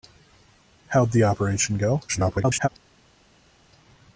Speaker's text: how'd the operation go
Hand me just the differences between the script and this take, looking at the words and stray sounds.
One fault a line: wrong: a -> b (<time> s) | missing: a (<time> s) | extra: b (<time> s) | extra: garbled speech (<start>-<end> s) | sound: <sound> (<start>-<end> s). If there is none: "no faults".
extra: garbled speech (2.1-2.7 s)